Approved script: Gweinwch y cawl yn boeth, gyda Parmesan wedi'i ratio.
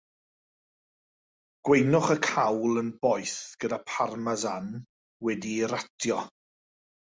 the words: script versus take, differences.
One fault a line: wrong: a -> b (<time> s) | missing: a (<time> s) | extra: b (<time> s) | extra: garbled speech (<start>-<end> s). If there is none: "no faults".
no faults